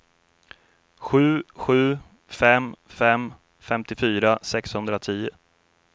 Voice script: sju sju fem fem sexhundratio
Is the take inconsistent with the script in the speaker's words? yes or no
yes